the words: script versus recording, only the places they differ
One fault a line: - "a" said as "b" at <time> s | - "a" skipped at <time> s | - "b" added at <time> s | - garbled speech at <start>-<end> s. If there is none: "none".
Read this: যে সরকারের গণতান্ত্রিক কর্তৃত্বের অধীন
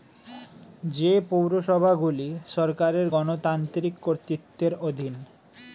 - "পৌরসভাগুলি" added at 1.3 s